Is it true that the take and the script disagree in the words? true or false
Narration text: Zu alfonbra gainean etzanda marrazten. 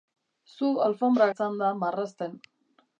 true